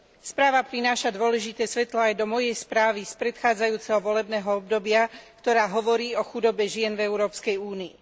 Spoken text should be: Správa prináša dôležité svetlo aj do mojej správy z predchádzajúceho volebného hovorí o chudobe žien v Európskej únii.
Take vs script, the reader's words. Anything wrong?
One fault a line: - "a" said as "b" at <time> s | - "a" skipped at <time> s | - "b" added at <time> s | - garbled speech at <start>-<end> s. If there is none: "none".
- "obdobia ktorá" added at 4.5 s